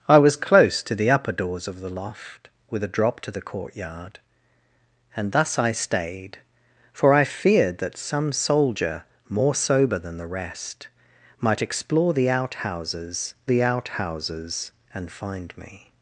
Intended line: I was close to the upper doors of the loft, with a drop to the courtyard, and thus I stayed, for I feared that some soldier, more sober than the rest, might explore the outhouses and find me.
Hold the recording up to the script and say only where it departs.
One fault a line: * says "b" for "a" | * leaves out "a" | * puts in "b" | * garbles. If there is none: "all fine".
* puts in "the outhouses"